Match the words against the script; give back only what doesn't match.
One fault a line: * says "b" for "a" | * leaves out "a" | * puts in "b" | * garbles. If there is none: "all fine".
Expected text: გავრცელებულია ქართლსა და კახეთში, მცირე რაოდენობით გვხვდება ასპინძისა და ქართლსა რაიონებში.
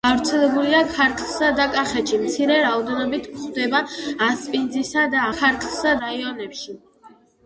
all fine